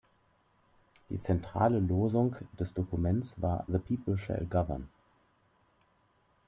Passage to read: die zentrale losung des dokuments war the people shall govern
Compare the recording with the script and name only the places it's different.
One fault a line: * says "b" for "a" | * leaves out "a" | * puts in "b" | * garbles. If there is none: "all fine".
all fine